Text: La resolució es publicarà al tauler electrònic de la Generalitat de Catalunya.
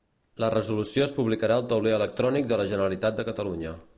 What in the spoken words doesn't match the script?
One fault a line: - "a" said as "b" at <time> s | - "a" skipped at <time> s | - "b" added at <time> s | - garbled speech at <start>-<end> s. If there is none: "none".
none